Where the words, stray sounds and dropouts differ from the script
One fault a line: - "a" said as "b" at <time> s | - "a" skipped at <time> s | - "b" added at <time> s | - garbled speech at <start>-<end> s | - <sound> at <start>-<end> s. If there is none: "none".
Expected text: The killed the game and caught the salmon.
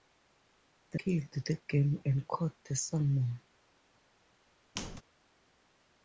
- squeak at 4.8-5.0 s